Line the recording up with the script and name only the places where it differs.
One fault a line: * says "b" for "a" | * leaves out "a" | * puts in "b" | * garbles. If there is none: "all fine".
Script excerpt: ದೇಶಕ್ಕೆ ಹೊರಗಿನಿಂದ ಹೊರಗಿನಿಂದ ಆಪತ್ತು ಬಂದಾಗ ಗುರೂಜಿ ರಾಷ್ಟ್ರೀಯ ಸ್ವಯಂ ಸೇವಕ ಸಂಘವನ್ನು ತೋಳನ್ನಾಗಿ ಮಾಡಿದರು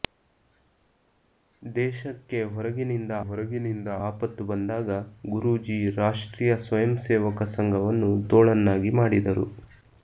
all fine